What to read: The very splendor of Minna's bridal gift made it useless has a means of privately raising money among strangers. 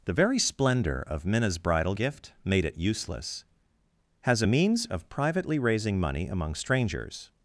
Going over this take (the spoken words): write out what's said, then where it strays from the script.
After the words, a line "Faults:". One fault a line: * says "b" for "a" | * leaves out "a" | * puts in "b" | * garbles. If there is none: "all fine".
The very splendor of Minna's bridal gift made it useless has a means of privately raising money among strangers.
Faults:
all fine